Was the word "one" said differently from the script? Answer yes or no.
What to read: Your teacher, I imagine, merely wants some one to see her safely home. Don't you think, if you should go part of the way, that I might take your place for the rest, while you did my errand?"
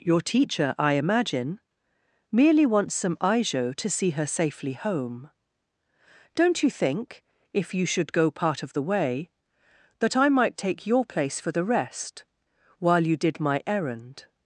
yes